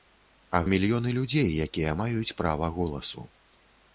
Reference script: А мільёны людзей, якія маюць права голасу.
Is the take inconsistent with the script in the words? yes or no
no